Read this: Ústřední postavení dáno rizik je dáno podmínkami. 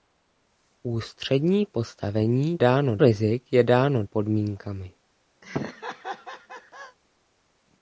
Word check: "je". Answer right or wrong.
right